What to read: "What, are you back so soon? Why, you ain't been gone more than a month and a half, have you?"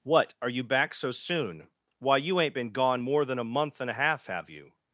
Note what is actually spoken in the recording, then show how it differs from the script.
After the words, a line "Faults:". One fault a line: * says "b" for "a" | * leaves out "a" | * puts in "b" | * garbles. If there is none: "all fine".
"What, are you back so soon? Why, you ain't been gone more than a month and a half, have you?"
Faults:
all fine